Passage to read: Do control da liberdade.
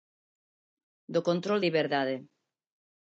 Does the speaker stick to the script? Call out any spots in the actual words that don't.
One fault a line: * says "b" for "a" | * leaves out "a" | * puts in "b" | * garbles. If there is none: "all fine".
* leaves out "da"